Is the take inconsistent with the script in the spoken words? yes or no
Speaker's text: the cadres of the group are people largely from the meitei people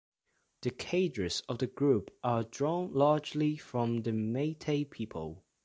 yes